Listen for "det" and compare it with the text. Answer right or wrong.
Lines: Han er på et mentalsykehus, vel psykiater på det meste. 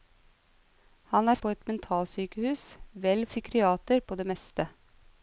right